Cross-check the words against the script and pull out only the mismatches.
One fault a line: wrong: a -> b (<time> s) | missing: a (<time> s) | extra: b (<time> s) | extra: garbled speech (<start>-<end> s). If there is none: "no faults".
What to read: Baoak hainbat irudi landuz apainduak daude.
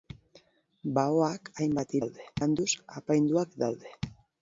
wrong: irudi -> daude (2.0 s)